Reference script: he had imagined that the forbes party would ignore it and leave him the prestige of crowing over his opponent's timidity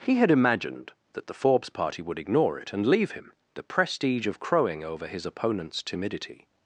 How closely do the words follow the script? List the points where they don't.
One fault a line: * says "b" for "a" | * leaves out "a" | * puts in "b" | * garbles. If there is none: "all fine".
all fine